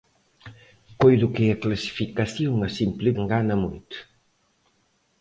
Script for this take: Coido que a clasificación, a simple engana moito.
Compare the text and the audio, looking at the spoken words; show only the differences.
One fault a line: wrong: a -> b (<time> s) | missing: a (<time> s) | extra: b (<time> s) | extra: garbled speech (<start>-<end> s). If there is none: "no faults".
no faults